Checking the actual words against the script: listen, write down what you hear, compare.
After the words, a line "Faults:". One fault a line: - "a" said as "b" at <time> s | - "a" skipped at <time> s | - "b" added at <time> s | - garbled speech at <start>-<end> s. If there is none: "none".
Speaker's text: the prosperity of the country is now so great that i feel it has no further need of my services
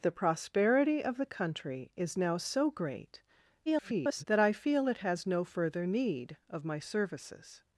the prosperity of the country is now so great [garbled] that i feel it has no further need of my services
Faults:
- garbled speech at 3.7-4.2 s